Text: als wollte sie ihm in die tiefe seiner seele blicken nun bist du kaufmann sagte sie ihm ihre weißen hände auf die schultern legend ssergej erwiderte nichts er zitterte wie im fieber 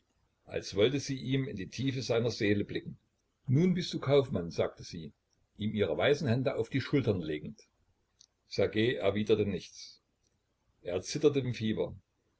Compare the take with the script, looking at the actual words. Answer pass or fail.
fail